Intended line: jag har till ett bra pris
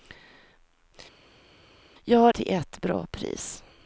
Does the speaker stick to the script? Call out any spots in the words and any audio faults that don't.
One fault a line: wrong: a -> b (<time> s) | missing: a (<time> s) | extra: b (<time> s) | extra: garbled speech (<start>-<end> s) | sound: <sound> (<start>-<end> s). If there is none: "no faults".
no faults